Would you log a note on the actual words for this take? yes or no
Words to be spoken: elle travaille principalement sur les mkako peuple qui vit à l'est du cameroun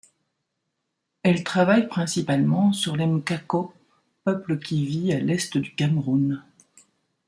no